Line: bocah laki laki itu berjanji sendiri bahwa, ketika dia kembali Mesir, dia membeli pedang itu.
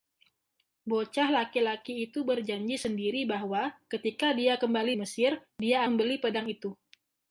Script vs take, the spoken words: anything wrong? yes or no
no